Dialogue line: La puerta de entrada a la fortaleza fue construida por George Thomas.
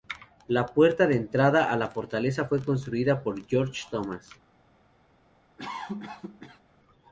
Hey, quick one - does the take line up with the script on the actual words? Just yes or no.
yes